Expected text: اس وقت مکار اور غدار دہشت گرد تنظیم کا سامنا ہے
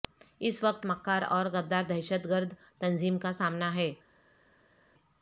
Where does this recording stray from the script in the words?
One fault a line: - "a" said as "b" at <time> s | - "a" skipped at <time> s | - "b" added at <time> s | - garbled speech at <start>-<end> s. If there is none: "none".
none